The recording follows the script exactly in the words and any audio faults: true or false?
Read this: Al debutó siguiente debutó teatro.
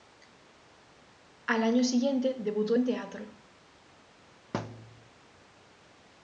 false